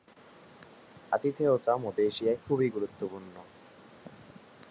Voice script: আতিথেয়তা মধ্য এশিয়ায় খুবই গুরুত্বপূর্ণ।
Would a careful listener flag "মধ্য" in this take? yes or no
no